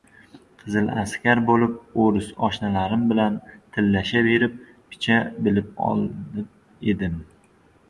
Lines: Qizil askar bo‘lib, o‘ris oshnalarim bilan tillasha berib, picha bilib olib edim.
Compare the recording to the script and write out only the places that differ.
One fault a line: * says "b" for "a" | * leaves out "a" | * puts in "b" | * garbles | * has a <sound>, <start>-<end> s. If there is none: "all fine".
all fine